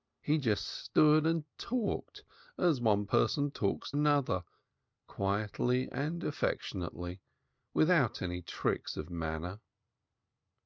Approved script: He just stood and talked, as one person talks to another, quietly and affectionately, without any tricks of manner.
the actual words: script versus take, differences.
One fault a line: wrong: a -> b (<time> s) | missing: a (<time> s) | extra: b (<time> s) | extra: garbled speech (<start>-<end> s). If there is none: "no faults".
missing: to (3.9 s)